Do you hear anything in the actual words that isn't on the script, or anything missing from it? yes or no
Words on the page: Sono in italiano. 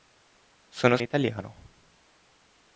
no